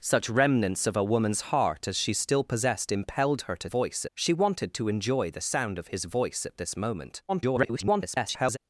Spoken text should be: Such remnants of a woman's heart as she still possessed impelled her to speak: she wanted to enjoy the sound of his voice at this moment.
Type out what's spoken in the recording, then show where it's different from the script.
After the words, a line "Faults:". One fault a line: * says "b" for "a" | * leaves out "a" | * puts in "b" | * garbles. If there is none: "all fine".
Such remnants of a woman's heart as she still possessed impelled her to voice: she wanted to enjoy the sound of his voice at this moment. [garbled]
Faults:
* says "voice" for "speak"
* garbles